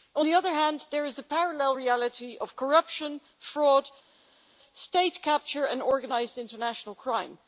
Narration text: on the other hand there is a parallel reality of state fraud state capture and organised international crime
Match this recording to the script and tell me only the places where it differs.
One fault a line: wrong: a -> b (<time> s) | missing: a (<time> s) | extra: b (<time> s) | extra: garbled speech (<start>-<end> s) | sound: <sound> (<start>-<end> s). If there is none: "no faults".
wrong: state -> corruption (2.5 s)